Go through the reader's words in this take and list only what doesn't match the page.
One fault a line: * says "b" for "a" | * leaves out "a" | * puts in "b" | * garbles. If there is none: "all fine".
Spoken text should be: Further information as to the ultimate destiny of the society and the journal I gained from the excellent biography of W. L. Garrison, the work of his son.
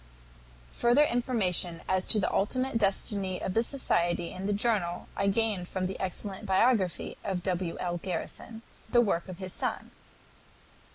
all fine